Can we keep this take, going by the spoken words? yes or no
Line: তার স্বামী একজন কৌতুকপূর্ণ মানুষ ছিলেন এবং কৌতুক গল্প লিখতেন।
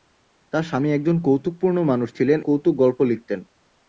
no